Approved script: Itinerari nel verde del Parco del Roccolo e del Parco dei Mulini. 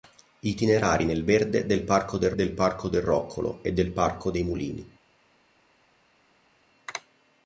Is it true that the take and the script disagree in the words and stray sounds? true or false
true